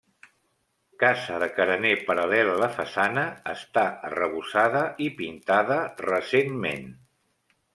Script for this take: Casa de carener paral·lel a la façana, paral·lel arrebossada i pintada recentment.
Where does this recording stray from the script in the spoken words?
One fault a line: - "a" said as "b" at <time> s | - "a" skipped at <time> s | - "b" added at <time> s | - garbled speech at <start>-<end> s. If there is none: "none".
- "paral·lel" said as "està" at 3.5 s